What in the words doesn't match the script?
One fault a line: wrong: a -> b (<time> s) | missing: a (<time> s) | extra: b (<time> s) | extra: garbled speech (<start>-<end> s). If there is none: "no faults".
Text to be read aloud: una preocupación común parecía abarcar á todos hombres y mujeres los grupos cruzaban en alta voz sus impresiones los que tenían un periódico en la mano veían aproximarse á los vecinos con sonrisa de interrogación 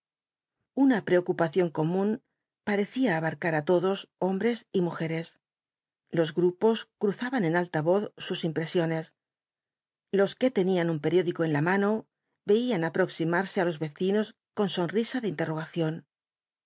no faults